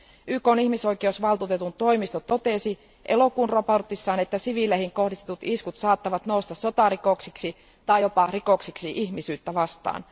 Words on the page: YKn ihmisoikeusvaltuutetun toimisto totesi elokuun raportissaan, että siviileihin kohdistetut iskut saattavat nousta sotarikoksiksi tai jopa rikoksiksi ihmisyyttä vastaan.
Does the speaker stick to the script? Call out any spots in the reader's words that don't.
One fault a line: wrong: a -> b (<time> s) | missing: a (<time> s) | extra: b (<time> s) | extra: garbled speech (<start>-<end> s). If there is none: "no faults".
no faults